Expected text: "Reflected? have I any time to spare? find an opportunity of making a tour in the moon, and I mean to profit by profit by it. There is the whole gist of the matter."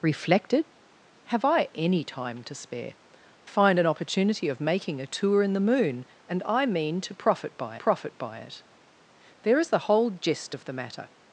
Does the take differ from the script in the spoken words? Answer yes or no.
no